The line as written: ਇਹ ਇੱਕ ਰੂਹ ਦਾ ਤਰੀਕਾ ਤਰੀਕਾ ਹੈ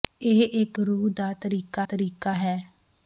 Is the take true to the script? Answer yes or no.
yes